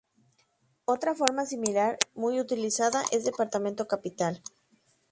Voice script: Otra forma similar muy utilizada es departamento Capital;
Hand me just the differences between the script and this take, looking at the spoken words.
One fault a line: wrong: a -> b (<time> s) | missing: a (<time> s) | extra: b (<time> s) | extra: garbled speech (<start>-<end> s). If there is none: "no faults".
no faults